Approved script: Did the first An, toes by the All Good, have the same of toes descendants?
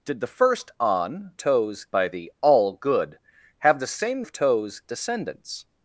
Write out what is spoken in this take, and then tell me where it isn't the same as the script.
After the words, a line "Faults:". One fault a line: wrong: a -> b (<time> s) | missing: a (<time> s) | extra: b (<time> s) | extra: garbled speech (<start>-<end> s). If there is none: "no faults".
Did the first An, toes by the All Good, have the same of toes descendants?
Faults:
no faults